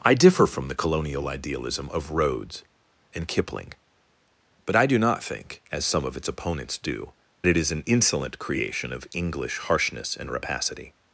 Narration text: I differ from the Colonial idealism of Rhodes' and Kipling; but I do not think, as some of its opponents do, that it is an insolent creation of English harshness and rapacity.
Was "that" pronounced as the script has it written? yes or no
no